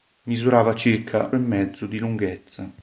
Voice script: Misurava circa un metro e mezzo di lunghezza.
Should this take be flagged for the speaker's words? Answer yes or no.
yes